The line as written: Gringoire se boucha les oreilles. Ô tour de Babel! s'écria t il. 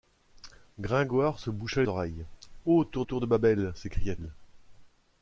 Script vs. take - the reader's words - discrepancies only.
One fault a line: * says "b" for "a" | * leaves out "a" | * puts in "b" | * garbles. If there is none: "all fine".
* leaves out "les"
* puts in "tour"
* leaves out "t"